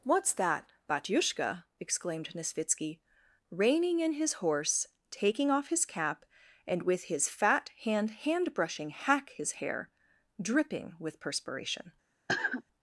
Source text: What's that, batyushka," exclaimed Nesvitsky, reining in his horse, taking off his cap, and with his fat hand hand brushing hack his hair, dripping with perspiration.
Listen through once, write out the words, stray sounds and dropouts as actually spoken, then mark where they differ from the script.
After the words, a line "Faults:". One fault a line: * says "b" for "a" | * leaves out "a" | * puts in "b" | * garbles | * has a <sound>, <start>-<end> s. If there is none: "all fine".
What's that, batyushka," exclaimed Nesvitsky, reining in his horse, taking off his cap, and with his fat hand hand brushing hack his hair, dripping with perspiration.
Faults:
* has a cough, 12.3-12.6 s